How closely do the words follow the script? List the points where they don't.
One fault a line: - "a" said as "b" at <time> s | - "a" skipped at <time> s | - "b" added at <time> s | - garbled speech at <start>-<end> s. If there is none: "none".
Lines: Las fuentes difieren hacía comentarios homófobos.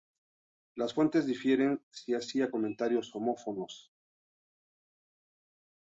- "si" added at 1.9 s